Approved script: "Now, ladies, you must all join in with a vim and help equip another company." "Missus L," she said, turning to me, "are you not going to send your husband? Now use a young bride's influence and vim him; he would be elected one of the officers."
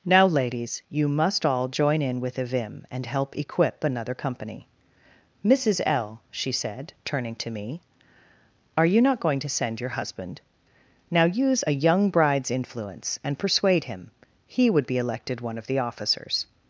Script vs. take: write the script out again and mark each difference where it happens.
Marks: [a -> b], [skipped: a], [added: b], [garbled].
"Now, ladies, you must all join in with a vim and help equip another company." "Missus L," she said, turning to me, "are you not going to send your husband? Now use a young bride's influence and [vim -> persuade] him; he would be elected one of the officers."